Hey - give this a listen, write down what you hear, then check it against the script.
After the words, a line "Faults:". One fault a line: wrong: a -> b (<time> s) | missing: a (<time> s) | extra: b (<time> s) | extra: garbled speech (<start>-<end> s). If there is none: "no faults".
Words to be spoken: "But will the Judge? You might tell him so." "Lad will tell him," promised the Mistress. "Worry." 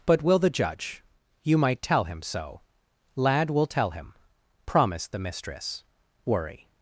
"But will the Judge? You might tell him so." "Lad will tell him," promised the Mistress. "Worry."
Faults:
no faults